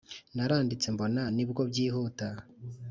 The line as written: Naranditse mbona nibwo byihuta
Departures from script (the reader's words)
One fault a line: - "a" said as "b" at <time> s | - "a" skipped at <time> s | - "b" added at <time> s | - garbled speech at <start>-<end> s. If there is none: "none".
none